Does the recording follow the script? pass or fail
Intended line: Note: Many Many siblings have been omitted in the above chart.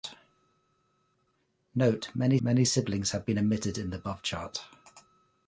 pass